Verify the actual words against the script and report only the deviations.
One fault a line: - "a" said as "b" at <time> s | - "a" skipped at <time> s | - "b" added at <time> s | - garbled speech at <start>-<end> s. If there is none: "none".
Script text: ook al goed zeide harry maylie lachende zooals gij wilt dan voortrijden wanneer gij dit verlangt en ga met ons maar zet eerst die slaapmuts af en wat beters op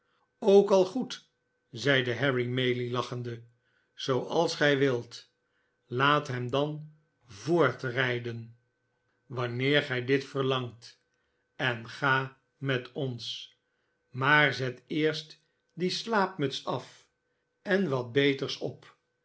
- "laat hem" added at 5.8 s